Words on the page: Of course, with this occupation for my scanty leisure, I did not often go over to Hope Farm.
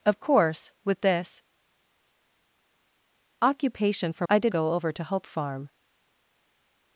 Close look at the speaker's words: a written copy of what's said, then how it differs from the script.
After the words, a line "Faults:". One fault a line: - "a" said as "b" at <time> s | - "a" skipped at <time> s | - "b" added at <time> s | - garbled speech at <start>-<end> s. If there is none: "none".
Of course, with this occupation for I did go over to Hope Farm.
Faults:
- "my scanty leisure" skipped at 4.2 s
- "not often" skipped at 4.5 s